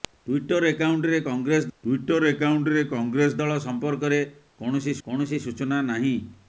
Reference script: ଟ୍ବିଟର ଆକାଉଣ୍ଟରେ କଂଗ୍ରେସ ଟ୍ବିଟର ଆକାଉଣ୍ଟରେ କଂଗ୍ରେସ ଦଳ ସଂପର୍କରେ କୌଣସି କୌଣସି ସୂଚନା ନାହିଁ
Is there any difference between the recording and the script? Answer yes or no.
no